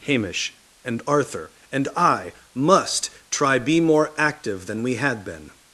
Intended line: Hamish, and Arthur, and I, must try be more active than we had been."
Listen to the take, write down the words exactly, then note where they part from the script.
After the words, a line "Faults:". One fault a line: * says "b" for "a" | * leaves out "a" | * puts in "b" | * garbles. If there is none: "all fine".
Hamish, and Arthur, and I, must try be more active than we had been."
Faults:
all fine